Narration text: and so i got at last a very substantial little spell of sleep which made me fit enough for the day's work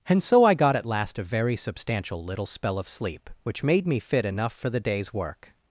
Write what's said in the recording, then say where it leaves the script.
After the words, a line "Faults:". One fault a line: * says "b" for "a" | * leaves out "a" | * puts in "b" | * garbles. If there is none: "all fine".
and so i got at last a very substantial little spell of sleep which made me fit enough for the day's work
Faults:
all fine